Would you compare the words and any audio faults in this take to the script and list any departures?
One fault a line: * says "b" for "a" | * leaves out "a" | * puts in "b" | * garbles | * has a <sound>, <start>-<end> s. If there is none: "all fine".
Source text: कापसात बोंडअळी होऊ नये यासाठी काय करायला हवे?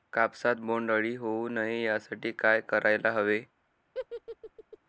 * has a laugh, 3.9-4.8 s